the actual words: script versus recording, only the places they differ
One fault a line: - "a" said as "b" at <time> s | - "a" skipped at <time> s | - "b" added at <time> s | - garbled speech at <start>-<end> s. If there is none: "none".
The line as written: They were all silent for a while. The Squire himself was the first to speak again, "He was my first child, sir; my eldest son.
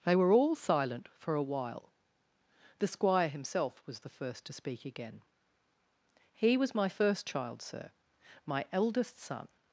none